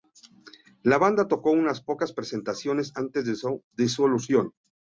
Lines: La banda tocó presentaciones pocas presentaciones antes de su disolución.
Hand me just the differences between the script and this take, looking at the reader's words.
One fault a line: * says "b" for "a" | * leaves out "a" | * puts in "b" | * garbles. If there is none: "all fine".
* says "unas" for "presentaciones"